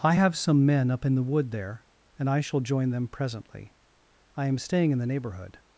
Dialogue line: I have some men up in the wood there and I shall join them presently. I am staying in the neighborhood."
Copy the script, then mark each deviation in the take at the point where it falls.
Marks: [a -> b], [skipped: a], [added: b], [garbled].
I have some men up in the wood there and I shall join them presently. I am staying in the neighborhood."